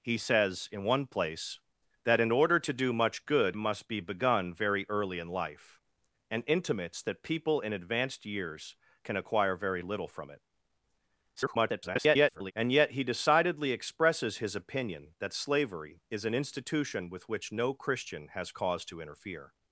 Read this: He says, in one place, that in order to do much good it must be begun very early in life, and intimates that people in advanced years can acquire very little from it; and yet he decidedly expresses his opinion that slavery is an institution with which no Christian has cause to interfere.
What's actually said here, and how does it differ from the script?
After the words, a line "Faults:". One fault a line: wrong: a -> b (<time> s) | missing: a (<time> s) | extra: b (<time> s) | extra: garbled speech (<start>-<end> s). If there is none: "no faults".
He says, in one place, that in order to do much good must be begun very early in life, and intimates that people in advanced years can acquire very little from it; [garbled] and yet he decidedly expresses his opinion that slavery is an institution with which no Christian has cause to interfere.
Faults:
missing: it (3.6 s)
extra: garbled speech (11.4-12.5 s)